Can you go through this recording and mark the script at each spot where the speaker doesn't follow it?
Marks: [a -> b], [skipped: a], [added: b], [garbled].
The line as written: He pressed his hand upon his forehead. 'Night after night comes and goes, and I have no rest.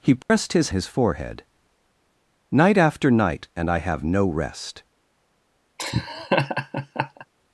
He pressed his [skipped: hand upon] his forehead. 'Night after night [skipped: comes and goes,] and I have no rest.